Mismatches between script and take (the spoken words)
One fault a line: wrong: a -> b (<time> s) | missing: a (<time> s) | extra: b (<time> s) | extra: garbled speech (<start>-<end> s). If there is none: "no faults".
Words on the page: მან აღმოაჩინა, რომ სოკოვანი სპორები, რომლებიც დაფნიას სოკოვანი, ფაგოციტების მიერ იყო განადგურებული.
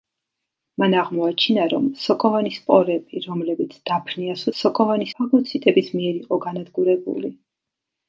no faults